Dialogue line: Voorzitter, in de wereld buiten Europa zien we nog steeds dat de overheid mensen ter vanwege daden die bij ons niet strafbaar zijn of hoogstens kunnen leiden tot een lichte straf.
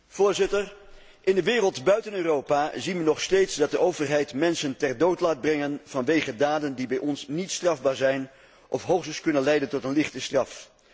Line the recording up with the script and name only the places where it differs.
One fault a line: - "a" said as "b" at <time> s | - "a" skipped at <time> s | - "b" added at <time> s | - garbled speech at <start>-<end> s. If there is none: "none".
- "dood laat brengen" added at 5.0 s